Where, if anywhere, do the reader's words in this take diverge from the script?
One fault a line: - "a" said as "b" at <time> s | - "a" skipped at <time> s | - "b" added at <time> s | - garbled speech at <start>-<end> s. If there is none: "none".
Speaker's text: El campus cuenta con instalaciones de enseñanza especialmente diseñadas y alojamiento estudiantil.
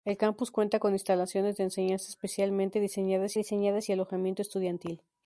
- "diseñadas" added at 3.3 s